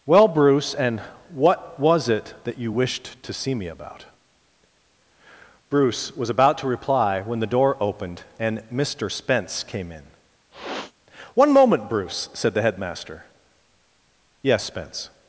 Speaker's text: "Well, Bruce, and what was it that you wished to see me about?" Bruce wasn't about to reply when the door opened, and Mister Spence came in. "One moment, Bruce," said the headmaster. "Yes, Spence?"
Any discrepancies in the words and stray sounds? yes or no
yes